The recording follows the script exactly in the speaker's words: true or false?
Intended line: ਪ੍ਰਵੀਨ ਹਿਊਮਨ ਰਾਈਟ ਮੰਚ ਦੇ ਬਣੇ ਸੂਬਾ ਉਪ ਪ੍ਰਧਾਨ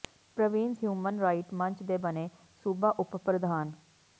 true